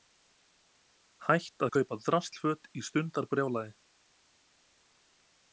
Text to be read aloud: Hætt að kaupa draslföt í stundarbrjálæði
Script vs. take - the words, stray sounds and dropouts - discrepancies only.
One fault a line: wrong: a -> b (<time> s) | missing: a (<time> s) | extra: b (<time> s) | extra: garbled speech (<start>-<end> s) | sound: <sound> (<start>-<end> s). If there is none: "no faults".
no faults